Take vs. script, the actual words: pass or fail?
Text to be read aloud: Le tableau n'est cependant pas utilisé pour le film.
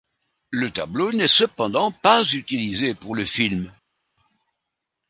pass